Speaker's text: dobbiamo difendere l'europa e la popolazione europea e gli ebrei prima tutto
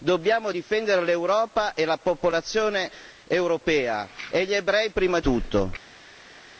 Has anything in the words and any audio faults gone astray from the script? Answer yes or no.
no